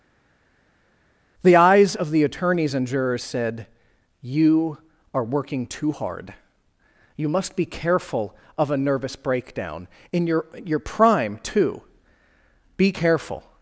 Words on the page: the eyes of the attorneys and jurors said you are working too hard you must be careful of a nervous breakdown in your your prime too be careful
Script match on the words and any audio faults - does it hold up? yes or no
yes